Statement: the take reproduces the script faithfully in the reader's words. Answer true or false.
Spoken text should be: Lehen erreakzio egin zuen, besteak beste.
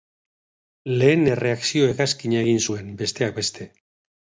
false